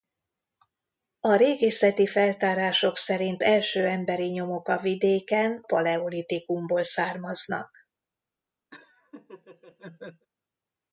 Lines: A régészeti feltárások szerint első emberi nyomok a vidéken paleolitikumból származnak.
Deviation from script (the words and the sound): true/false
true